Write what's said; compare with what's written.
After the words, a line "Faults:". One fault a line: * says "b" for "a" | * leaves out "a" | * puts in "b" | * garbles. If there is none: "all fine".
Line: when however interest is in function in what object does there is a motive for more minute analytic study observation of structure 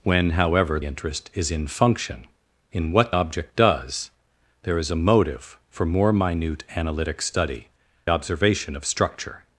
when however interest is in function in what object does there is a motive for more minute analytic study observation of structure
Faults:
all fine